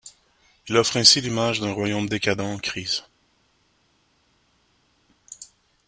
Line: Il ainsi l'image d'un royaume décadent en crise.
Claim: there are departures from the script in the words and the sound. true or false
true